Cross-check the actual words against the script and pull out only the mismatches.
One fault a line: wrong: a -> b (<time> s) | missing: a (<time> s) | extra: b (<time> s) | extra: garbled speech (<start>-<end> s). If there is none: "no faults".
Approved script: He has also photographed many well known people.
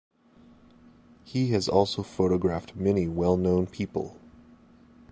no faults